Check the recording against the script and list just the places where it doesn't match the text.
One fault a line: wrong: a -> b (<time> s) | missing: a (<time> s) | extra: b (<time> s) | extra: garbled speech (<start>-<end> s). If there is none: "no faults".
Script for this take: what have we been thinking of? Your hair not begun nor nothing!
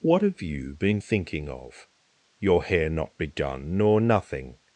wrong: we -> you (0.4 s)